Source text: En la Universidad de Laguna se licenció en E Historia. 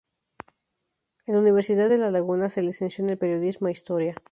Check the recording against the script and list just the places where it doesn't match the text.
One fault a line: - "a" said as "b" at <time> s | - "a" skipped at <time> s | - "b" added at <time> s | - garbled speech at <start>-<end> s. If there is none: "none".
- "La" added at 2.0 s
- "Periodismo" added at 3.2 s